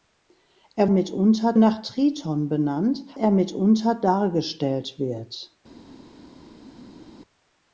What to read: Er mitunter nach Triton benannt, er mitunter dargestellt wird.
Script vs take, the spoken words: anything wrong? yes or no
no